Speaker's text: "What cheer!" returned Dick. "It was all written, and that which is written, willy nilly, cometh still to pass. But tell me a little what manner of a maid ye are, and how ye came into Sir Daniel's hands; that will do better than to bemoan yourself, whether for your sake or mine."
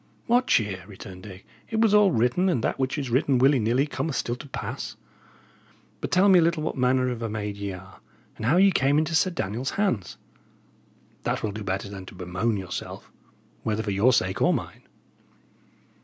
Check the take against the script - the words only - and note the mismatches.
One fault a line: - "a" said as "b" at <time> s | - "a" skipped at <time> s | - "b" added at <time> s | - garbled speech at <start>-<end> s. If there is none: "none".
none